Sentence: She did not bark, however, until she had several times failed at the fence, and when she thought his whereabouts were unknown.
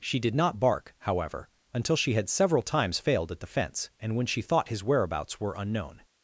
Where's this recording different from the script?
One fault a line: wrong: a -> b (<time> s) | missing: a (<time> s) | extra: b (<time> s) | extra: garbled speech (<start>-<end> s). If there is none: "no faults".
no faults